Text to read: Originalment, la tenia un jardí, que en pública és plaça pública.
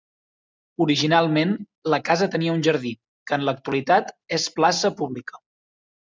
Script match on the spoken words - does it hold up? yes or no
no